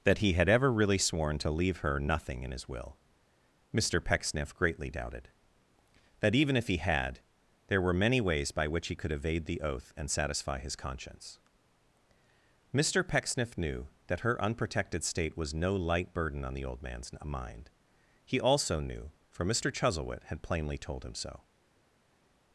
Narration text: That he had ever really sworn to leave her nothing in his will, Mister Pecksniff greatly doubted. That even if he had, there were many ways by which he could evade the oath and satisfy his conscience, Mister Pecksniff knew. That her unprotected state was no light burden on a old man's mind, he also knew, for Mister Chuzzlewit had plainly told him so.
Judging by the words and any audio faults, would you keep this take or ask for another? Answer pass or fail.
fail